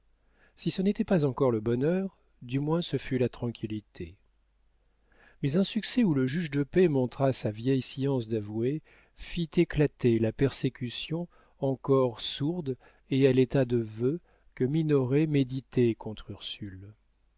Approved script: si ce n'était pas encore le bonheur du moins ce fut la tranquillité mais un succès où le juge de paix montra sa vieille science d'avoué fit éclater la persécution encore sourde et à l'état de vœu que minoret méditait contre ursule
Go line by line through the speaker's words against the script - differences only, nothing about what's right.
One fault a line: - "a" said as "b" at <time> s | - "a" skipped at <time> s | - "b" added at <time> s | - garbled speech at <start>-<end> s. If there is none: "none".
none